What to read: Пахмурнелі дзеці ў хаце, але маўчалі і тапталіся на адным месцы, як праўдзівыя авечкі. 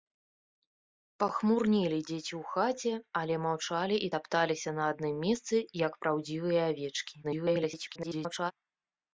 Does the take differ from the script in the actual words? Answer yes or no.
yes